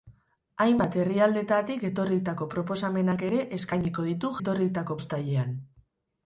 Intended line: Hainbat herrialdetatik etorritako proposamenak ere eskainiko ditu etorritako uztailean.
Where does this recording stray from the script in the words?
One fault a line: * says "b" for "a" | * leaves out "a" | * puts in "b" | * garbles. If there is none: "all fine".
all fine